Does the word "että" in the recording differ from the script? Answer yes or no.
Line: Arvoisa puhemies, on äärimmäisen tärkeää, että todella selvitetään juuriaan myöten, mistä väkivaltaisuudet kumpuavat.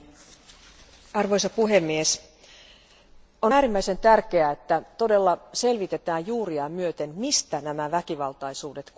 no